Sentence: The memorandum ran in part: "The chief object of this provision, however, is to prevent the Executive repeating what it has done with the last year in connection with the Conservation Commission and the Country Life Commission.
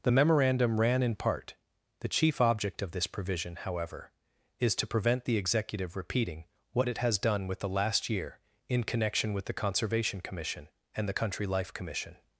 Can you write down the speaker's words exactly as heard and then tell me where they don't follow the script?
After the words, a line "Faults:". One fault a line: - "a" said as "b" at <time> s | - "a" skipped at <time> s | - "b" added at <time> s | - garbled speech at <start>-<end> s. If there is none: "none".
The memorandum ran in part: "The chief object of this provision, however, is to prevent the Executive repeating what it has done with the last year in connection with the Conservation Commission and the Country Life Commission.
Faults:
none